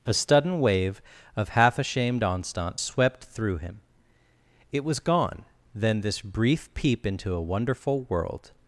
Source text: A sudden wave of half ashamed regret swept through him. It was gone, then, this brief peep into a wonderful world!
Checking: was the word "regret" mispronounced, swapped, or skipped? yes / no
yes